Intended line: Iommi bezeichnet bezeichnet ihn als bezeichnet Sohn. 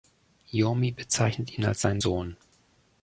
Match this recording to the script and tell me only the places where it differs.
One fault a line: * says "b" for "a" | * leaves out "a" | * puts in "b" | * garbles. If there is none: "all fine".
* leaves out "bezeichnet"
* says "seinen" for "bezeichnet"